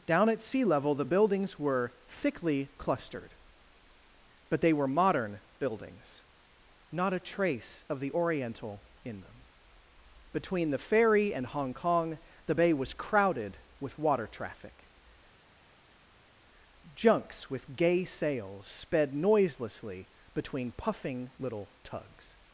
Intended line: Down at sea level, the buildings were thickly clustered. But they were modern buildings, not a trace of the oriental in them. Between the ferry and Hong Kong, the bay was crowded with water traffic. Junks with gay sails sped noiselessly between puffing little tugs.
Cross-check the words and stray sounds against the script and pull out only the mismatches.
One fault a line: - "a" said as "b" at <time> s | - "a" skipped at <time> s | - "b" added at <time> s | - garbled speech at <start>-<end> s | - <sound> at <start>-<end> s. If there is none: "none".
none